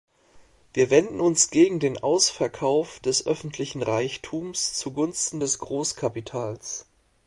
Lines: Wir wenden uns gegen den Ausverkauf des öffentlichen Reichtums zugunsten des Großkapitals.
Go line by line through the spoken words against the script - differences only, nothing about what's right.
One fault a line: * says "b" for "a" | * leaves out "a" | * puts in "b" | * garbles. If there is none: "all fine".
all fine